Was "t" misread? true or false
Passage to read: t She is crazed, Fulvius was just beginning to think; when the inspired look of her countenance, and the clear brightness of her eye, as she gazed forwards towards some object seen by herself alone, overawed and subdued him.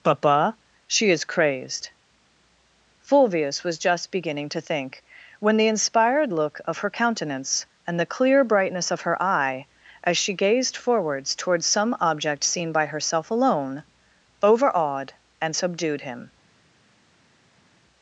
true